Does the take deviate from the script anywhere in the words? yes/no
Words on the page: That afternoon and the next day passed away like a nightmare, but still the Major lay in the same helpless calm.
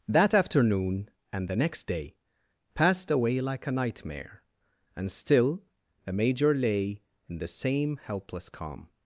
yes